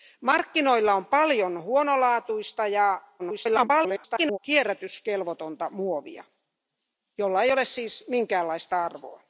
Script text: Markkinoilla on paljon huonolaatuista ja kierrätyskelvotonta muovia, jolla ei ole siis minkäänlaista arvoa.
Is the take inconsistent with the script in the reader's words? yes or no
yes